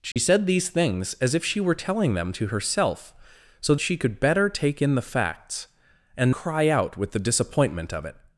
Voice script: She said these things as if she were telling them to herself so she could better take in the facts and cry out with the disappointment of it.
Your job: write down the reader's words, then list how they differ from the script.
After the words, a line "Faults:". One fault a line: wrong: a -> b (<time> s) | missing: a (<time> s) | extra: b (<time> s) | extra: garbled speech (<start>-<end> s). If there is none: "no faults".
She said these things as if she were telling them to herself so she could better take in the facts and cry out with the disappointment of it.
Faults:
no faults